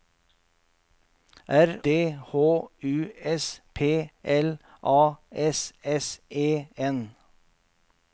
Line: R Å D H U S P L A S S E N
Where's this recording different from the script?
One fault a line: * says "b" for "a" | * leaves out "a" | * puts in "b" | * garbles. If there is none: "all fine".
* leaves out "Å"